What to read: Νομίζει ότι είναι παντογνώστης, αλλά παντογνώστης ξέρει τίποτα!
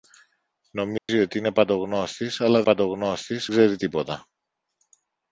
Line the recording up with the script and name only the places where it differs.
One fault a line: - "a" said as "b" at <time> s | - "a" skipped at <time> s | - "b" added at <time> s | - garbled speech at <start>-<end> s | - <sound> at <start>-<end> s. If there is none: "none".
- dropout at 1.0-1.1 s